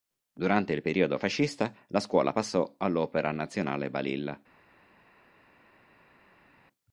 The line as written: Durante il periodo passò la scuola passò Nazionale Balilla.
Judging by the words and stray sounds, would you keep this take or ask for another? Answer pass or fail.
fail